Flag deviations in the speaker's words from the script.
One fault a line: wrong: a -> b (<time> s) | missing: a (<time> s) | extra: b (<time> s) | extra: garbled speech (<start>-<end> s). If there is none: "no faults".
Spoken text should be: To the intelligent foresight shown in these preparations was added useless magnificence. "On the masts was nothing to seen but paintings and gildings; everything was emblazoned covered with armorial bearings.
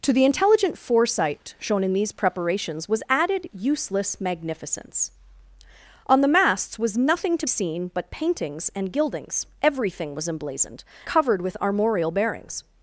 no faults